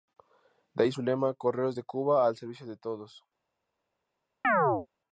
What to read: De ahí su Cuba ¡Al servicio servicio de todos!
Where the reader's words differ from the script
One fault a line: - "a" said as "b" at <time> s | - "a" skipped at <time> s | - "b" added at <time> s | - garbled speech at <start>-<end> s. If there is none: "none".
- "lema Correos de" added at 1.0 s
- "servicio" skipped at 2.7 s